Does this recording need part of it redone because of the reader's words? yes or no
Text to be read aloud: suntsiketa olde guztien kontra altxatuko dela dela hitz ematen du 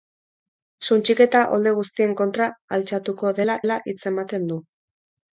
no